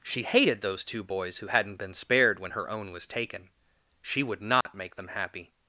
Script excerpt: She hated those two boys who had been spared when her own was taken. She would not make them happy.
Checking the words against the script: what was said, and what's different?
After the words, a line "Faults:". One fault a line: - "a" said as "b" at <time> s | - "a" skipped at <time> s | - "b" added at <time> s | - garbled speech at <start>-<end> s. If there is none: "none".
She hated those two boys who hadn't been spared when her own was taken. She would not make them happy.
Faults:
- "had" said as "hadn't" at 1.5 s